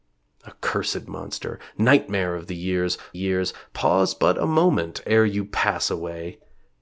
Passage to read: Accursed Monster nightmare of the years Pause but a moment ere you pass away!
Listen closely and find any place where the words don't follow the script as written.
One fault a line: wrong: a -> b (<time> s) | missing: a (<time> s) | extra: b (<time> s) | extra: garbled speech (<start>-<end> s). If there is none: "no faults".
extra: years (3.1 s)